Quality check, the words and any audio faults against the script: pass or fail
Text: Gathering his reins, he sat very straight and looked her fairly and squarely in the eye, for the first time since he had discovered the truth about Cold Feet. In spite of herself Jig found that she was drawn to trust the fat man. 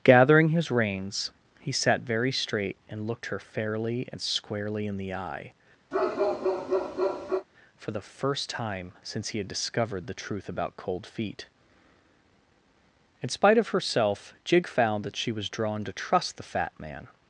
fail